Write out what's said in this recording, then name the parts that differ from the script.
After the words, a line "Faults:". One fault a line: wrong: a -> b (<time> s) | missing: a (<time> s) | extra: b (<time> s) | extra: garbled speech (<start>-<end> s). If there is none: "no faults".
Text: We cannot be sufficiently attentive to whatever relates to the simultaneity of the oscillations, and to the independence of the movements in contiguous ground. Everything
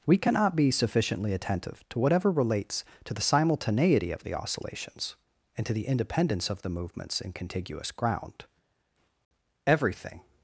We cannot be sufficiently attentive to whatever relates to the simultaneity of the oscillations, and to the independence of the movements in contiguous ground. Everything
Faults:
no faults